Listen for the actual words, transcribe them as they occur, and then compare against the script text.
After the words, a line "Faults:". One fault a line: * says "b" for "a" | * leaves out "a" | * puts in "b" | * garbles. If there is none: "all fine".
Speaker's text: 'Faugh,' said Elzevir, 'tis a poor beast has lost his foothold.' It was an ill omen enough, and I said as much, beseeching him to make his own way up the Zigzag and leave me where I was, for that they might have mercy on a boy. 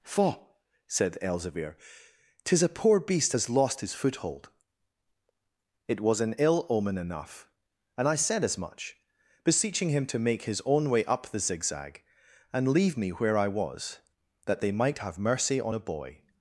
'Faugh,' said Elzevir, 'tis a poor beast has lost his foothold.' It was an ill omen enough, and I said as much, beseeching him to make his own way up the Zigzag and leave me where I was, that they might have mercy on a boy.
Faults:
* leaves out "for"